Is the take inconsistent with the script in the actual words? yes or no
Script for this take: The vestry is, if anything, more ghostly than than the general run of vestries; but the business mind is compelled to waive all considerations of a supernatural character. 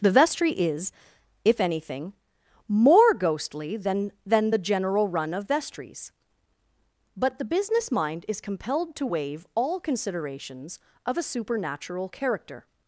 no